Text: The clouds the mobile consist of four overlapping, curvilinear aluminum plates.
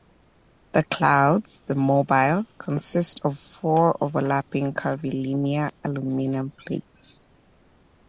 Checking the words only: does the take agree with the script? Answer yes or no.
yes